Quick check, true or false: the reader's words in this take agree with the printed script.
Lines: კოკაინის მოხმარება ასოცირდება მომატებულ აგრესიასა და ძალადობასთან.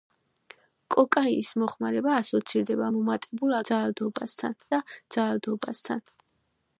false